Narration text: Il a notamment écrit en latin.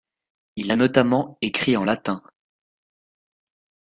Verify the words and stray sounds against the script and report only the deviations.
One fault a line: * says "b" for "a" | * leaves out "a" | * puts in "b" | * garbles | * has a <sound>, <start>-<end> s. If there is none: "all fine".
all fine